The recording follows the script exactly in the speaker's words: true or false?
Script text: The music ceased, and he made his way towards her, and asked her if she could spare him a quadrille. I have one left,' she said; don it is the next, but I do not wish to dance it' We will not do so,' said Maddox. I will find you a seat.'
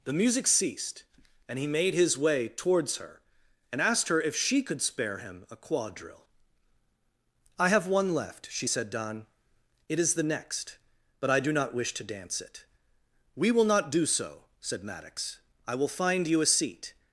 true